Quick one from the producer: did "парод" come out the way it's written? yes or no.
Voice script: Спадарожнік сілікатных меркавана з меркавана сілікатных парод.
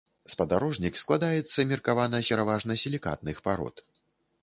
yes